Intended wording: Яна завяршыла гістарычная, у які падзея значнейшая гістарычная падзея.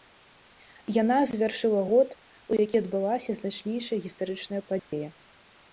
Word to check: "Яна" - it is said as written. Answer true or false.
true